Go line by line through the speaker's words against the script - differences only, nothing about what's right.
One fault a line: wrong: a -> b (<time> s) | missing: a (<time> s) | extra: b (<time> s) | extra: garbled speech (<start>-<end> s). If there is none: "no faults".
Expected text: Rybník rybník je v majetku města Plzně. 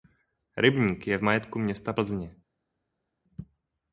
missing: rybník (1.1 s)